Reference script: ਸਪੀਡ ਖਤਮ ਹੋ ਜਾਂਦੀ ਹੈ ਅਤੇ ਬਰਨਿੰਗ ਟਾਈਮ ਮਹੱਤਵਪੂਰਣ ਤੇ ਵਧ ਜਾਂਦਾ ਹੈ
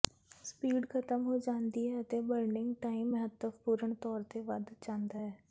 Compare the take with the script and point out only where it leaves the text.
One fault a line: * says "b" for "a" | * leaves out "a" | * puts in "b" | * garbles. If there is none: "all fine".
* puts in "ਤੌਰ"